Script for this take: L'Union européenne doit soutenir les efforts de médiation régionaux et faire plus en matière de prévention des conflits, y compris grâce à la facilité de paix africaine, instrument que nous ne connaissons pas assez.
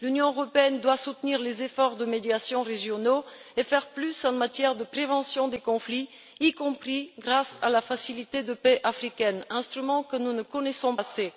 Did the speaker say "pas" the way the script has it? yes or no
no